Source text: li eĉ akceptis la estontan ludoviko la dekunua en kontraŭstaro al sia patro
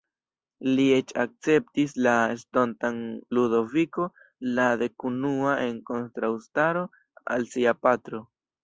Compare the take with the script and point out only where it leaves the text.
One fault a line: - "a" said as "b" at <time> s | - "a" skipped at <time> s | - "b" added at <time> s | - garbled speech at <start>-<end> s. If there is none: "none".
none